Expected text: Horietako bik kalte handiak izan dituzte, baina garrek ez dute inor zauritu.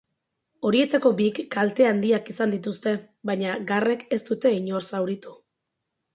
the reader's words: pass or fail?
pass